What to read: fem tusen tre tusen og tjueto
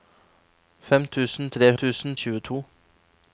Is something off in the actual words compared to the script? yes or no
no